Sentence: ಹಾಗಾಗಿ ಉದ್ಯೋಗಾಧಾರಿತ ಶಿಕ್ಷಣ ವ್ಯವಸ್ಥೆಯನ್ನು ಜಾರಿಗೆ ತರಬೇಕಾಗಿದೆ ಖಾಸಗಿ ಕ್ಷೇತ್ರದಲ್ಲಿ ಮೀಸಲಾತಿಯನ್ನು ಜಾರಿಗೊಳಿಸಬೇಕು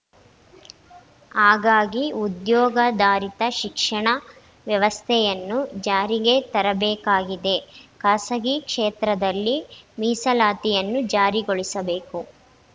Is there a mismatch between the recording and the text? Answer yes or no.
no